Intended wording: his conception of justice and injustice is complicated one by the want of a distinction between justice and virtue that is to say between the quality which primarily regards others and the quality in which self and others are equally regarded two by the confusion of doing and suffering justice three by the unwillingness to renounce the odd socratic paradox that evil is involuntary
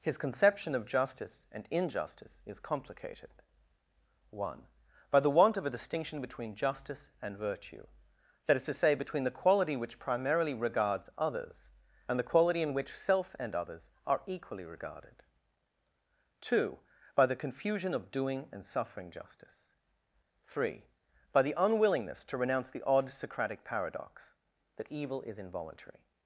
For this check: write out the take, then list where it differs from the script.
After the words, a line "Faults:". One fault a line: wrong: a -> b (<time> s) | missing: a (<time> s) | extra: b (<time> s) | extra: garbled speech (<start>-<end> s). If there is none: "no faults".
his conception of justice and injustice is complicated one by the want of a distinction between justice and virtue that is to say between the quality which primarily regards others and the quality in which self and others are equally regarded two by the confusion of doing and suffering justice three by the unwillingness to renounce the odd socratic paradox that evil is involuntary
Faults:
no faults